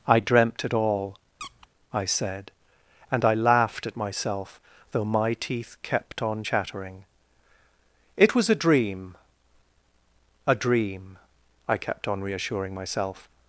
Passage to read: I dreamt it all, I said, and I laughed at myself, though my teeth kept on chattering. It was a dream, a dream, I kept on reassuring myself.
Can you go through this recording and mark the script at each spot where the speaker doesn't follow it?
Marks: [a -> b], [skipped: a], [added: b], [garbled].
I dreamt it all, I said, and I laughed at myself, though my teeth kept on chattering. It was a dream, a dream, I kept on reassuring myself.